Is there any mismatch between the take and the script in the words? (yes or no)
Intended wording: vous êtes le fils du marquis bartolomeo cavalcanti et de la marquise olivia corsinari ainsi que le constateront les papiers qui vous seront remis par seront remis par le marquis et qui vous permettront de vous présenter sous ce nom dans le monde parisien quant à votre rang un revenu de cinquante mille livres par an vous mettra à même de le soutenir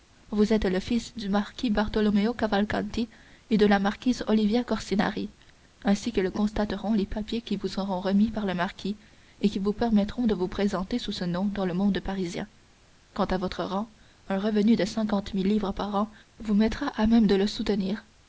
yes